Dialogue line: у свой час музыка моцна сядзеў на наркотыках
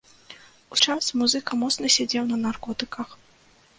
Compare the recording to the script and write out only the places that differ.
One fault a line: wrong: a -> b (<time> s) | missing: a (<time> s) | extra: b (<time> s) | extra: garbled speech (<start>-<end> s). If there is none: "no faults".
missing: свой (0.8 s)